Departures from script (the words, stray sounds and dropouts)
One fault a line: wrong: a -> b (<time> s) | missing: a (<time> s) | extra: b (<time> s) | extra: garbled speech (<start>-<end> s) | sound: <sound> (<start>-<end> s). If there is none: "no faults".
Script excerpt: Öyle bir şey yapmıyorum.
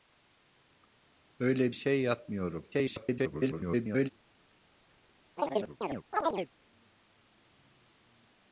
missing: bir (1.8 s)
extra: garbled speech (2.7-4.1 s)
sound: chirp (5.4-6.5 s)